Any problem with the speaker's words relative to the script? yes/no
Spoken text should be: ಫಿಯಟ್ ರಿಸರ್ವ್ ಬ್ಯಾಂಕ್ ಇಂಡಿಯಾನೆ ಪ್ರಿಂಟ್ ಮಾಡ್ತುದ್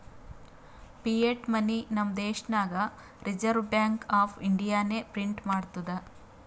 yes